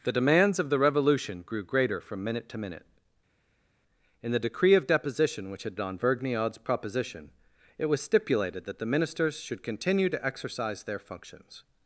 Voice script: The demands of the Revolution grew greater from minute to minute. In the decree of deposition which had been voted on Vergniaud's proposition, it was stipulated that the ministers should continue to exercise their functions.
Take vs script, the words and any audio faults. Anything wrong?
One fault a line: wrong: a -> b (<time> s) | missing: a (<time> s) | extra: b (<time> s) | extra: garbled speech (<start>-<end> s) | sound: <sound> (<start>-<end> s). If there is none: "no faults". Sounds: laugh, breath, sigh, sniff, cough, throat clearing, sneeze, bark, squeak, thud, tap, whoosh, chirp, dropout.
missing: been voted (5.8 s)